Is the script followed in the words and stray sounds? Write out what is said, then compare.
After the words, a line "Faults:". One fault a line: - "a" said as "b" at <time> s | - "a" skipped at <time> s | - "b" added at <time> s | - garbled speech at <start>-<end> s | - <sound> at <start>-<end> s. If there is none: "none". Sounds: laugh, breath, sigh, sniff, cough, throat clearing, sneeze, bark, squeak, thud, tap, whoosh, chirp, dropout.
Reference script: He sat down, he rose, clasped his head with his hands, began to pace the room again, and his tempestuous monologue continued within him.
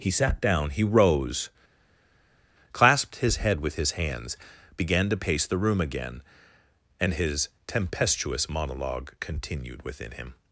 He sat down, he rose, clasped his head with his hands, began to pace the room again, and his tempestuous monologue continued within him.
Faults:
none